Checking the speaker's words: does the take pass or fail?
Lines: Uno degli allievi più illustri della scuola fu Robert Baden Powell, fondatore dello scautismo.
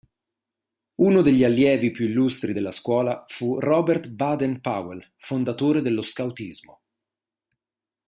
pass